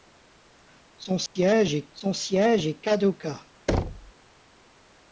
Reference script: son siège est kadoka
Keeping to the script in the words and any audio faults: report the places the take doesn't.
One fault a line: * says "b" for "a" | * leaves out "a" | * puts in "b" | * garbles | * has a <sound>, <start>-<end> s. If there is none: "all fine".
* has a dropout, 1.3-1.4 s
* puts in "son siège est"
* has a thud, 3.7-4.1 s